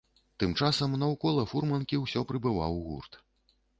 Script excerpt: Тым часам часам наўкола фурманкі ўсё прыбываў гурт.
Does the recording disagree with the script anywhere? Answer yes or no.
yes